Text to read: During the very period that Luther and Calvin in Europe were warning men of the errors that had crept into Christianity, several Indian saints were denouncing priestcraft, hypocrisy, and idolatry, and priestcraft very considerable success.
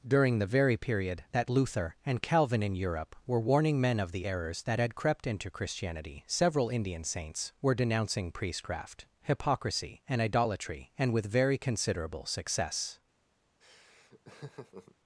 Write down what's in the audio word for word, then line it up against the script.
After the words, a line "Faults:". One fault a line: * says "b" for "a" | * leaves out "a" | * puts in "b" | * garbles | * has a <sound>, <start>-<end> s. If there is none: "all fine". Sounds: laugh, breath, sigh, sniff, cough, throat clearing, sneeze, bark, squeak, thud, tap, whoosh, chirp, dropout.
During the very period that Luther and Calvin in Europe were warning men of the errors that had crept into Christianity, several Indian saints were denouncing priestcraft, hypocrisy, and idolatry, and with very considerable success.
Faults:
* says "with" for "priestcraft"
* has a laugh, 13.6-15.0 s